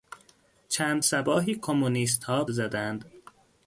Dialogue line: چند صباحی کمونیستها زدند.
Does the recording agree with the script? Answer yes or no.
yes